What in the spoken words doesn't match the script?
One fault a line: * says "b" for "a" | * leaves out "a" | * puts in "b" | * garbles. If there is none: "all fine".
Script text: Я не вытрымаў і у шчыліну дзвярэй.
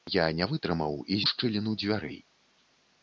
all fine